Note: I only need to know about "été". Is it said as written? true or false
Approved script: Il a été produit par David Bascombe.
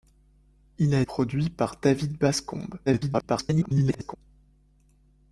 false